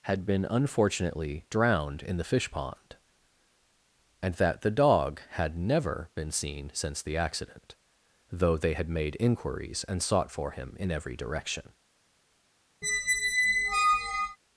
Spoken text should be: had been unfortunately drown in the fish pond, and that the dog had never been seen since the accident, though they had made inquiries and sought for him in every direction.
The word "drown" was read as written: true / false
false